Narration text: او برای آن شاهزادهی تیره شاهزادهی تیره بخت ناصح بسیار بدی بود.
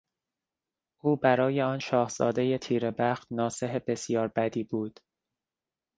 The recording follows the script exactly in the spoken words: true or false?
false